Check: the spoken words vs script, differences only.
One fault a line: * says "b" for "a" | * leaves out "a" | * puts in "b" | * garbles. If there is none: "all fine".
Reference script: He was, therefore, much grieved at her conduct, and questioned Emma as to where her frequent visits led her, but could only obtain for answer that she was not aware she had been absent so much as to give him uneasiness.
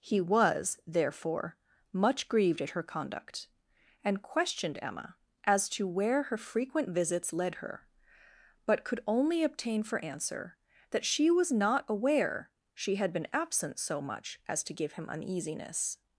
all fine